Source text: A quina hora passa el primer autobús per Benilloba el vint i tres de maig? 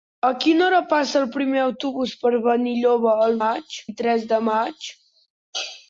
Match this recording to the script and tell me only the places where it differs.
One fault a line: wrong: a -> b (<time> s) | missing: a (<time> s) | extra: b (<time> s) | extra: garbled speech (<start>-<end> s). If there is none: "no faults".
wrong: vint -> maig (3.4 s)